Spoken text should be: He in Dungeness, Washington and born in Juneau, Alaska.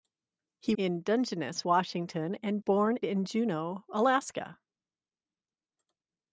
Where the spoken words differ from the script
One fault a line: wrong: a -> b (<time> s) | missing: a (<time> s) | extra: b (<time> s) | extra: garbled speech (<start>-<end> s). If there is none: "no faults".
no faults